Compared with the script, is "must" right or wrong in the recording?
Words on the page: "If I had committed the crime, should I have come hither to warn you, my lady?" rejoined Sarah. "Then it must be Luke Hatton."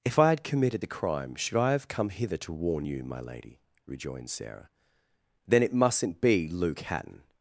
wrong